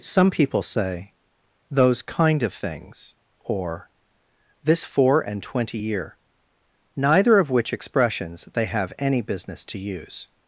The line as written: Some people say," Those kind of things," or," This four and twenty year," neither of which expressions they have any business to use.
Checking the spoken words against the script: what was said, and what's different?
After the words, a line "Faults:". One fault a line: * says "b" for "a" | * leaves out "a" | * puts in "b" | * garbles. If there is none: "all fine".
Some people say," Those kind of things," or," This four and twenty year," neither of which expressions they have any business to use.
Faults:
all fine